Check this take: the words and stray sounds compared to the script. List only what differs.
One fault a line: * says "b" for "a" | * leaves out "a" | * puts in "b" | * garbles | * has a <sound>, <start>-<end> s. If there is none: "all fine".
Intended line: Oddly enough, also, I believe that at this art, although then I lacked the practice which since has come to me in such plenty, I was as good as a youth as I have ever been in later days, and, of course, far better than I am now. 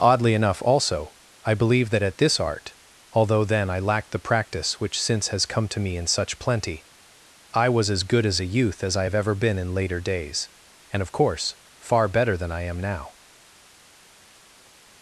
all fine